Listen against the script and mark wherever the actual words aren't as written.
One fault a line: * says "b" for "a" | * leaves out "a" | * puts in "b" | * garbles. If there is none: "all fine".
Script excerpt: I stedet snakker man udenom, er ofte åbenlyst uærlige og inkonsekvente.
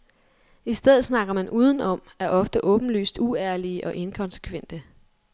all fine